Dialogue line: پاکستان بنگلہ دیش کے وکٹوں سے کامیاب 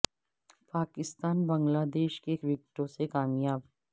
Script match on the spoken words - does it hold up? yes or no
yes